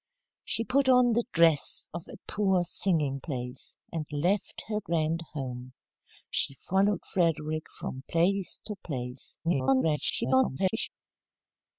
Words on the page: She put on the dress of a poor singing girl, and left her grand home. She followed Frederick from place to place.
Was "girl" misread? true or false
true